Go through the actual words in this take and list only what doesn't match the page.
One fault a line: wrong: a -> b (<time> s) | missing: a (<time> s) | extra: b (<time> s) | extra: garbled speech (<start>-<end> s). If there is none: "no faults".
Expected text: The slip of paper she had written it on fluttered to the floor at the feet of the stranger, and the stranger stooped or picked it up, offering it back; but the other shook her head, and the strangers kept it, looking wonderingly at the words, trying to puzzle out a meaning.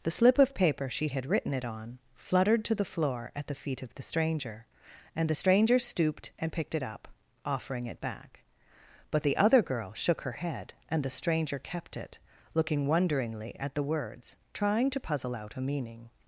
wrong: or -> and (6.4 s)
extra: girl (9.6 s)
wrong: strangers -> stranger (11.1 s)